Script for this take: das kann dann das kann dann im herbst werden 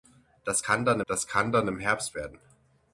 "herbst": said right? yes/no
yes